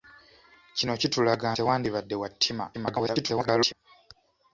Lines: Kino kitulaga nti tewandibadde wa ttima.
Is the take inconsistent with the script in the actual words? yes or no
yes